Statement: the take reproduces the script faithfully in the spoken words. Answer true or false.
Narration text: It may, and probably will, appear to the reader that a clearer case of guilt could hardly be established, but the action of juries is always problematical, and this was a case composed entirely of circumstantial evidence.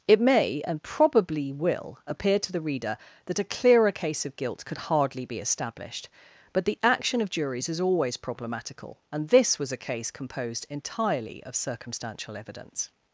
true